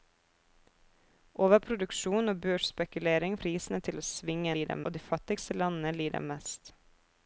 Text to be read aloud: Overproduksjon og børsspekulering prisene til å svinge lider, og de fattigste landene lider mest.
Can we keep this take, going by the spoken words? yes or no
yes